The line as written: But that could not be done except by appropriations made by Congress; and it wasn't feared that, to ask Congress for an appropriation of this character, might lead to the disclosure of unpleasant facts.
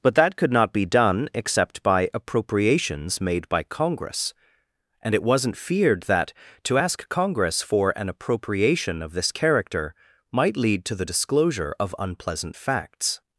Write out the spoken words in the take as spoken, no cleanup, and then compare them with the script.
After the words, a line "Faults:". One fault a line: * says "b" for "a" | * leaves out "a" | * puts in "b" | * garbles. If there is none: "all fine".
But that could not be done except by appropriations made by Congress; and it wasn't feared that, to ask Congress for an appropriation of this character, might lead to the disclosure of unpleasant facts.
Faults:
all fine